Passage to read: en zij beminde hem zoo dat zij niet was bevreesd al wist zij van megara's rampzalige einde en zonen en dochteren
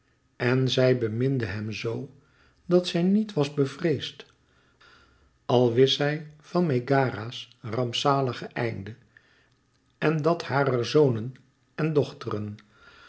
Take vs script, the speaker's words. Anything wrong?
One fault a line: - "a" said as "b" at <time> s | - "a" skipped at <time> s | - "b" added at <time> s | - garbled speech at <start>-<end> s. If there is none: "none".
- "dat harer" added at 10.2 s